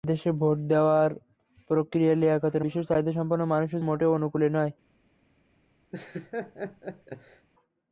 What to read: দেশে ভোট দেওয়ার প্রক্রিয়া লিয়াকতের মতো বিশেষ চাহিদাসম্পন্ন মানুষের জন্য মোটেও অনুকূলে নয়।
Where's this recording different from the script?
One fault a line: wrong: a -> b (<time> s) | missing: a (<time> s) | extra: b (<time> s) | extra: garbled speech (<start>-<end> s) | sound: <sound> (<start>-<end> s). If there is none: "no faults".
missing: মতো (2.6 s)
missing: জন্য (3.8 s)
sound: laugh (5.9-7.5 s)